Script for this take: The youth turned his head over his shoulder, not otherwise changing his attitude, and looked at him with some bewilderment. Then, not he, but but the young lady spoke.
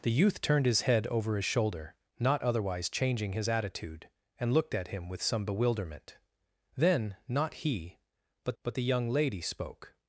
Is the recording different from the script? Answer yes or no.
no